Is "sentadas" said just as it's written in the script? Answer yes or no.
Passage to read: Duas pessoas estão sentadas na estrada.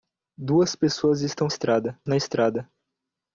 no